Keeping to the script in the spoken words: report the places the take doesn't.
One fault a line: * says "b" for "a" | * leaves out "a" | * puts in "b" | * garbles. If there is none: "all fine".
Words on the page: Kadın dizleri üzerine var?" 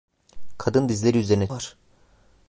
all fine